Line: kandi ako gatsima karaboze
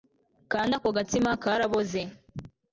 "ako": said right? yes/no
yes